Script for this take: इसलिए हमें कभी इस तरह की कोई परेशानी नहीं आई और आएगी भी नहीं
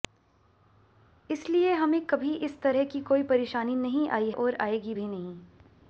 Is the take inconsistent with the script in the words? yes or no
no